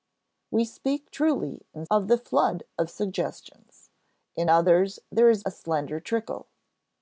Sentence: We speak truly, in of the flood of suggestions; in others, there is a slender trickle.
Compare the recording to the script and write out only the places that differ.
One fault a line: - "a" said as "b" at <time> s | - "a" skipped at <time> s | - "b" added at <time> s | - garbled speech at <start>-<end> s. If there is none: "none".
none